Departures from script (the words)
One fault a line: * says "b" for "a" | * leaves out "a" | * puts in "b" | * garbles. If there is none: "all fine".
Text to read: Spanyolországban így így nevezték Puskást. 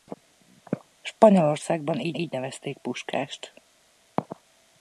all fine